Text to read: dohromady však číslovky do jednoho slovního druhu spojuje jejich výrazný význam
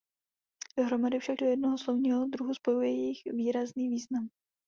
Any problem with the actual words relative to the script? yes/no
yes